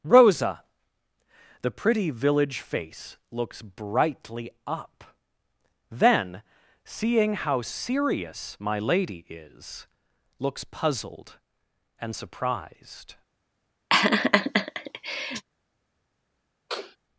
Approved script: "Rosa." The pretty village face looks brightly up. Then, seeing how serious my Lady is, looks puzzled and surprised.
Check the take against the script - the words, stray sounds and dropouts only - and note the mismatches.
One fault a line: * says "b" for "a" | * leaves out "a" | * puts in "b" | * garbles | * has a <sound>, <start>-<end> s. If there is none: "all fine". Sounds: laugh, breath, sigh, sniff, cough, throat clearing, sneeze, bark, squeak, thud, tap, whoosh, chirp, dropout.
* has a laugh, 13.9-15.4 s
* has a sniff, 16.7-17.0 s